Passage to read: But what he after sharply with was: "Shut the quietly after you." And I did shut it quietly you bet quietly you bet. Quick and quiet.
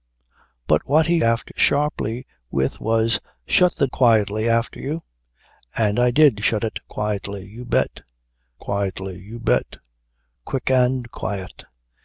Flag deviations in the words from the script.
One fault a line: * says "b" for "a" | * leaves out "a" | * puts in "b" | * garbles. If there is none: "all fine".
all fine